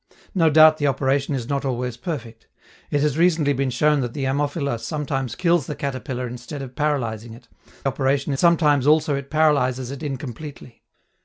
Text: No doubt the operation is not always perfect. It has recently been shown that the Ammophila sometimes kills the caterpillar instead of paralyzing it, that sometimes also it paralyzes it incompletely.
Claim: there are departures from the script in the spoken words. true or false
true